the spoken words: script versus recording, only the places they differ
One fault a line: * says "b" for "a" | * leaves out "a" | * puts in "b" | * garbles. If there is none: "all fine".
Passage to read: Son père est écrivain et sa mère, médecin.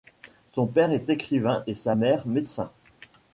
all fine